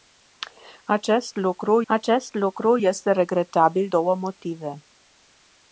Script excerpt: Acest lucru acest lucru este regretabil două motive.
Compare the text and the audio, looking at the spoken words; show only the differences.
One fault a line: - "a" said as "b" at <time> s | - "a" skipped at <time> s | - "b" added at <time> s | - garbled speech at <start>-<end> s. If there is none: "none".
none